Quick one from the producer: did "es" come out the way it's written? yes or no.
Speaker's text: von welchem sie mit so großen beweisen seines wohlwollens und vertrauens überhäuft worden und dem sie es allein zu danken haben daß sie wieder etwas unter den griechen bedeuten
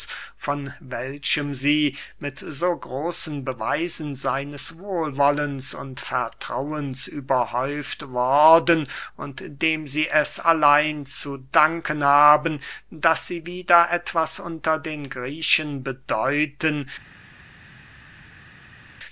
yes